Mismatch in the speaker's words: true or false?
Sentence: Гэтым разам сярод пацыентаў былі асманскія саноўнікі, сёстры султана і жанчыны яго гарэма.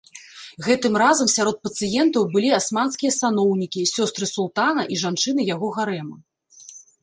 false